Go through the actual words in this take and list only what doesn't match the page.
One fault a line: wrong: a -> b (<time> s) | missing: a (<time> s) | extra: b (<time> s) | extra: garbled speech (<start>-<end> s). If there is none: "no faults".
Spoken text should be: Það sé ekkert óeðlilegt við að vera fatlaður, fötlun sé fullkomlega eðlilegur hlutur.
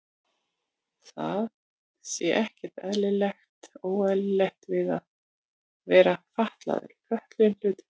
missing: sé fullkomlega eðlilegur (7.6 s)